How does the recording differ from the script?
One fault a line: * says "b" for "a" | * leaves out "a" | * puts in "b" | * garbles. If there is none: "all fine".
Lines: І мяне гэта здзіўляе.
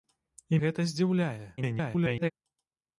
* leaves out "мяне"
* garbles